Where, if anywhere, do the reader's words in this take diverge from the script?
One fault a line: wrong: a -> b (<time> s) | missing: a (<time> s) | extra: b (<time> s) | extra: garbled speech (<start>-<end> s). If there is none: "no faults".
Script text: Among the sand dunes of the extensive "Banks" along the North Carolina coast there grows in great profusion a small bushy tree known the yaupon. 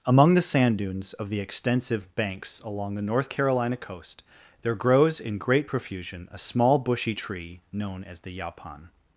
extra: as (8.0 s)